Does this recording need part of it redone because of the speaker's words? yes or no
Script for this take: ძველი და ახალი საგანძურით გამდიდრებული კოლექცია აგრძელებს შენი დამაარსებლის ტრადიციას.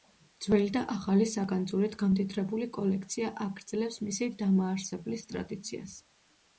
yes